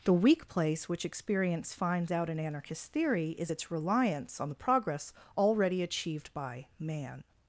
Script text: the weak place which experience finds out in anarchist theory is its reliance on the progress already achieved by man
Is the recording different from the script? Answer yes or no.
no